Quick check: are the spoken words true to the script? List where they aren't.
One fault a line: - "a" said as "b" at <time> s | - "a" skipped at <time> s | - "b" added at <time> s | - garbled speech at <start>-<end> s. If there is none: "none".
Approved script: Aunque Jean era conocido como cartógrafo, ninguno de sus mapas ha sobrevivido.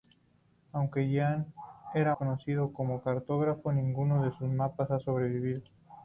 none